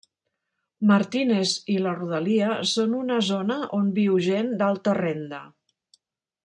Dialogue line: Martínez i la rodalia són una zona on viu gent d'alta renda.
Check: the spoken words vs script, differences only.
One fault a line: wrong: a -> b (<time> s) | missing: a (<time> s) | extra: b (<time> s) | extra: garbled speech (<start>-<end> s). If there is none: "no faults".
no faults